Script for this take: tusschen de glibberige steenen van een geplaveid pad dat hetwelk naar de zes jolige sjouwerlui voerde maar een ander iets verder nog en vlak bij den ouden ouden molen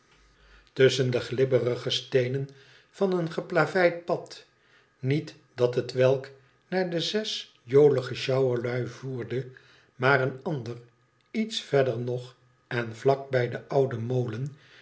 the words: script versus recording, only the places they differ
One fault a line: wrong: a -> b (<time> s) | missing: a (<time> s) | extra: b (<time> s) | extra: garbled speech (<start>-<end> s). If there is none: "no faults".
extra: niet (5.0 s)
missing: ouden (14.0 s)